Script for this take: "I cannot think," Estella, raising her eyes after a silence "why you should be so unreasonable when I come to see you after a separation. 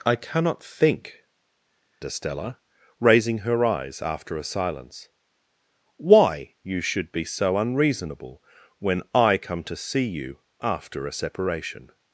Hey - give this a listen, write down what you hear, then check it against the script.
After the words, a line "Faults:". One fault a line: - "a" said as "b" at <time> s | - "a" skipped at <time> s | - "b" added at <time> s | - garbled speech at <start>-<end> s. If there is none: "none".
"I cannot think," Estella, raising her eyes after a silence "why you should be so unreasonable when I come to see you after a separation.
Faults:
none